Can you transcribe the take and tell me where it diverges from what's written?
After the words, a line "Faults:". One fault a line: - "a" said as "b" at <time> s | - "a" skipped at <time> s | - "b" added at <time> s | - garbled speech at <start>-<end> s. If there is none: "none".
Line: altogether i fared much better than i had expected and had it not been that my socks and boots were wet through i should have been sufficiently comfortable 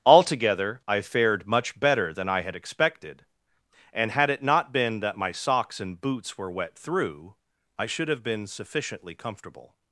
altogether i fared much better than i had expected and had it not been that my socks and boots were wet through i should have been sufficiently comfortable
Faults:
none